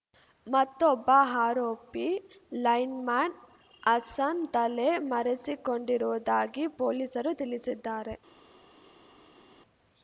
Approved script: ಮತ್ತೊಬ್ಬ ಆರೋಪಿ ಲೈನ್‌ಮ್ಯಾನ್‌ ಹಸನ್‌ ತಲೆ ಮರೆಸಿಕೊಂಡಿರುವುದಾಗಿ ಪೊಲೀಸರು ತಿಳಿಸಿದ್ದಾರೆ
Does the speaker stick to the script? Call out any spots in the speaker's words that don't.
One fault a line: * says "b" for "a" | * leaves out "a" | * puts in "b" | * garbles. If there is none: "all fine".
all fine